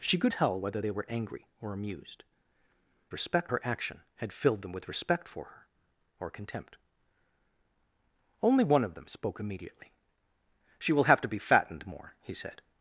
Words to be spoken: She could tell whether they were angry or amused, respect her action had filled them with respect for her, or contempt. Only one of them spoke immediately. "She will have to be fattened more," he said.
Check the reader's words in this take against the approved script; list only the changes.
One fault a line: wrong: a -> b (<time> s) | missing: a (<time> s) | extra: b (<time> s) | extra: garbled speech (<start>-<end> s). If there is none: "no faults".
no faults